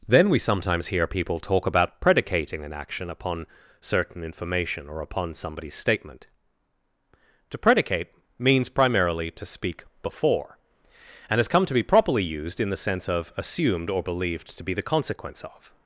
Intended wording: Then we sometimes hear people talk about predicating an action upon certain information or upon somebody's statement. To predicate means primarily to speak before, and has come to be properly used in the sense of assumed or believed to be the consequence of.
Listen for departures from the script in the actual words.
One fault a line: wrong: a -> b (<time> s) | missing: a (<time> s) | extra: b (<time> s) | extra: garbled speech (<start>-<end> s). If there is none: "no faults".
no faults